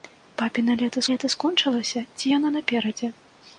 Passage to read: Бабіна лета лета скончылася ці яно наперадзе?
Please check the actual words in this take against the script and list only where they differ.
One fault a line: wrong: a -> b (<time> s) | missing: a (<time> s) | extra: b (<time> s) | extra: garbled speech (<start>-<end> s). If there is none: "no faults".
no faults